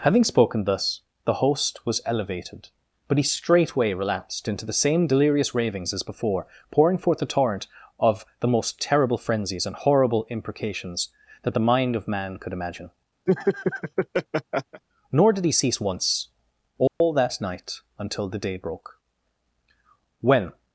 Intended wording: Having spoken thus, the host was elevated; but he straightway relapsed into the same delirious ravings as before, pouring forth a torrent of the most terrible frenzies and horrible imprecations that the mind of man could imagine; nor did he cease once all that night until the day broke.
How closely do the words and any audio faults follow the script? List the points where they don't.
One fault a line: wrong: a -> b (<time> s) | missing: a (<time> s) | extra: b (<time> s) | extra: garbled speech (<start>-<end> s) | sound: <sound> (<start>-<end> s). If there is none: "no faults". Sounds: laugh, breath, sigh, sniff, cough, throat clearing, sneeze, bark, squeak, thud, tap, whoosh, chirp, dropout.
sound: laugh (13.3-14.8 s)
sound: dropout (16.9-17.0 s)
extra: When (20.2 s)